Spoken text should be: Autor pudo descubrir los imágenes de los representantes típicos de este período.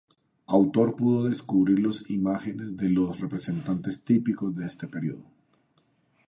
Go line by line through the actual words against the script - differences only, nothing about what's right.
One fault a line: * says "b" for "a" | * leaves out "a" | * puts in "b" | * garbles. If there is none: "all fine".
all fine